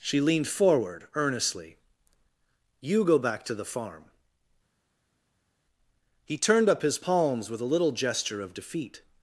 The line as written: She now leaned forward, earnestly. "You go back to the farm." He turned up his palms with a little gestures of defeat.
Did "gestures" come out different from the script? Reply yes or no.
yes